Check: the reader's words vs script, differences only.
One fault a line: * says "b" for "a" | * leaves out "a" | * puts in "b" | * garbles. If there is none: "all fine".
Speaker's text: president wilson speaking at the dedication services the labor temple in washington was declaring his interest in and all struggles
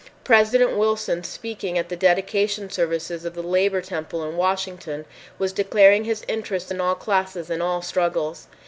* puts in "of"
* puts in "all classes"